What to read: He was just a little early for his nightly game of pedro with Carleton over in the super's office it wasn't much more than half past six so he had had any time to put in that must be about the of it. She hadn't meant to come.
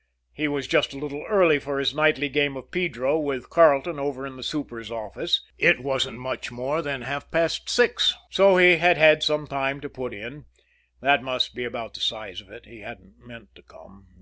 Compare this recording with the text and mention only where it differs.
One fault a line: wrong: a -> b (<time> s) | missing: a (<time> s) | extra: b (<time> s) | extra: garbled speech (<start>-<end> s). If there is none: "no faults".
wrong: any -> some (9.2 s)
extra: size (12.0 s)
wrong: She -> He (12.7 s)